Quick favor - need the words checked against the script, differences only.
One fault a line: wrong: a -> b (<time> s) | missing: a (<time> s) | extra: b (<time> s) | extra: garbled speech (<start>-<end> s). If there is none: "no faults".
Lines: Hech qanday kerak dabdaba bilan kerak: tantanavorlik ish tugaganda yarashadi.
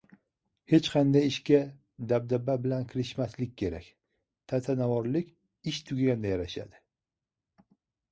wrong: kerak -> ishga (1.3 s)
extra: kirishmaslik (2.9 s)